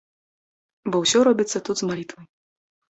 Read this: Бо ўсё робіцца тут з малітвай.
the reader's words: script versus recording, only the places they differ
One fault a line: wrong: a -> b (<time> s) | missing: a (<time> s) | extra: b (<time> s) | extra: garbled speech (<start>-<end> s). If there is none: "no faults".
no faults